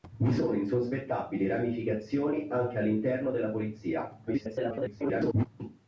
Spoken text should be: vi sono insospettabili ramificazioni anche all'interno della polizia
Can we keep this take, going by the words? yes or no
no